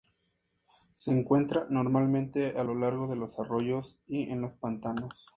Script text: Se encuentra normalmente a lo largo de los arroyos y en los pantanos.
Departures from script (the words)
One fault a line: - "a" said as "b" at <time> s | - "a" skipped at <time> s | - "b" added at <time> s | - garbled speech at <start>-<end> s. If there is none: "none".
none